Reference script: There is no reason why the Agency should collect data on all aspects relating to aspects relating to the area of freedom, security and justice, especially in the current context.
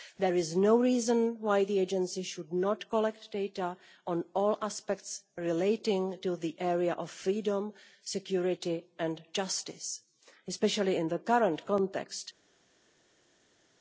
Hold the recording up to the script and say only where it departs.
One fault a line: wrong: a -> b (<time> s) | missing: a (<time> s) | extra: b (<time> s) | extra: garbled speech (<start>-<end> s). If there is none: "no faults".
extra: not (2.5 s)
missing: aspects relating to (6.4 s)